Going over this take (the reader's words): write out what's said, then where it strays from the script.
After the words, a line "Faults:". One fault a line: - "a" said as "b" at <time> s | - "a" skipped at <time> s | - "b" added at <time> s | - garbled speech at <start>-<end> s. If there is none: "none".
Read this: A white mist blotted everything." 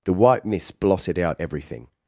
The white mist blotted out everything."
Faults:
- "A" said as "The" at 0.0 s
- "out" added at 1.2 s